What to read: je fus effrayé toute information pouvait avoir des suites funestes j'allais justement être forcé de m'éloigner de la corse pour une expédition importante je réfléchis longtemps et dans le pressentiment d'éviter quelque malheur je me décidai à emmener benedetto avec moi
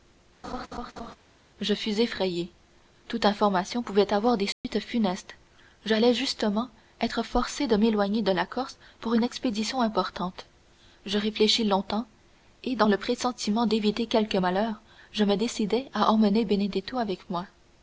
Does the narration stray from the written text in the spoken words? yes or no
no